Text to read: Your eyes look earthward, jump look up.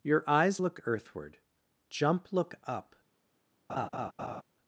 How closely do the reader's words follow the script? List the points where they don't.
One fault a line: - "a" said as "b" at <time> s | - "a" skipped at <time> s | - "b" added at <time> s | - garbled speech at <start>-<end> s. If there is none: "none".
none